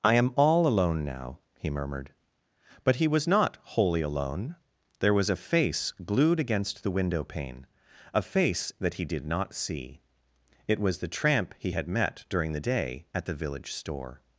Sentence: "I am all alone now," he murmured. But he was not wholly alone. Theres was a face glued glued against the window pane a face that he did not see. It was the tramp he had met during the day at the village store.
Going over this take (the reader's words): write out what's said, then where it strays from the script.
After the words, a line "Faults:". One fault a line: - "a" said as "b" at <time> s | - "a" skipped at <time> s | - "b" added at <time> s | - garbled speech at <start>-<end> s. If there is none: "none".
"I am all alone now," he murmured. But he was not wholly alone. There was a face glued against the window pane a face that he did not see. It was the tramp he had met during the day at the village store.
Faults:
- "Theres" said as "There" at 5.0 s
- "glued" skipped at 6.4 s